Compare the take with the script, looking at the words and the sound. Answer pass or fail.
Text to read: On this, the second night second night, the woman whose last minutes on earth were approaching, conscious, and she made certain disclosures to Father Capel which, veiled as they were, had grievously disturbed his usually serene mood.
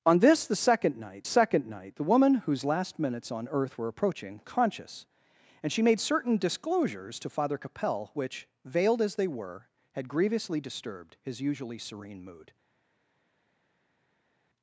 pass